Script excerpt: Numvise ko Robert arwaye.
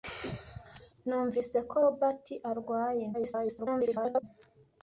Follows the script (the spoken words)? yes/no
no